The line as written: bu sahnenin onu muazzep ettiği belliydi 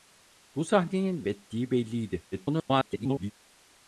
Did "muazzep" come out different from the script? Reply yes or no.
yes